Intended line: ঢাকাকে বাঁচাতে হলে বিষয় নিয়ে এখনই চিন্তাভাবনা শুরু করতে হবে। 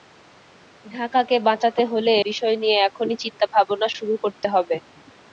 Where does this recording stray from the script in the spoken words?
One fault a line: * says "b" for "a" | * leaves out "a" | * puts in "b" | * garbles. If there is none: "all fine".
all fine